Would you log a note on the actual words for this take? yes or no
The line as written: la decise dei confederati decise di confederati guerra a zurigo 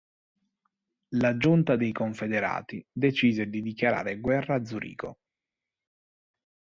yes